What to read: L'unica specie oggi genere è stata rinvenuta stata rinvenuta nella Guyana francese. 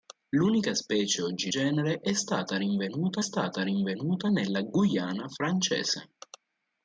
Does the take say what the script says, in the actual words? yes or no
yes